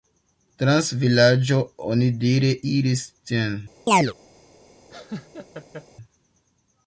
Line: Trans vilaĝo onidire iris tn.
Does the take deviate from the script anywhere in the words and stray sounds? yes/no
yes